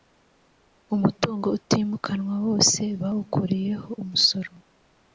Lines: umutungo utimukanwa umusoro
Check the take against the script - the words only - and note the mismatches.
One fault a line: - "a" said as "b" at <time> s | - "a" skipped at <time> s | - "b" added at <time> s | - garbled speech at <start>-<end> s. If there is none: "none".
- "wose bawukuriyeho" added at 2.5 s